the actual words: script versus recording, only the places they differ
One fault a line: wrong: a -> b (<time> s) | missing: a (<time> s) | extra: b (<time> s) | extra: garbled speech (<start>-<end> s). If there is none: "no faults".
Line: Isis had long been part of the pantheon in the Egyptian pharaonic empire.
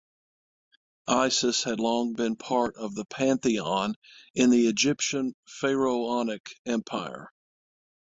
no faults